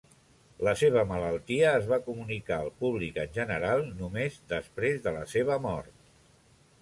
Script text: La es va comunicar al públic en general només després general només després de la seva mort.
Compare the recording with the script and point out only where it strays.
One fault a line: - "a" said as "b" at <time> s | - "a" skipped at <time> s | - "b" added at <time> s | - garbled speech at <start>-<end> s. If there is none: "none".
- "seva malaltia" added at 0.8 s
- "general només després" skipped at 5.0 s